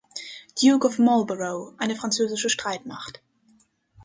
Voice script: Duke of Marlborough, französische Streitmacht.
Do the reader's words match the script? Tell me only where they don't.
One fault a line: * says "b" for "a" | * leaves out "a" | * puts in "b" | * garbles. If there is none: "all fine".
* puts in "eine"